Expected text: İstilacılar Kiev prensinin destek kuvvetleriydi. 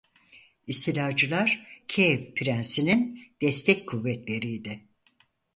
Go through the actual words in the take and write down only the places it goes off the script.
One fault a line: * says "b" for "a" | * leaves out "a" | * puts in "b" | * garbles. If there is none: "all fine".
all fine